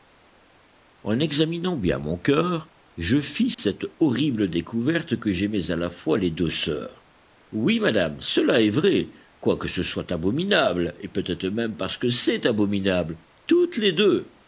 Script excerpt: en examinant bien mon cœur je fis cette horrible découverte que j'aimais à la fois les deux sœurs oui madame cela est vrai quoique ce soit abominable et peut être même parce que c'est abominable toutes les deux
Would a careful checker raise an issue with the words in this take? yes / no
no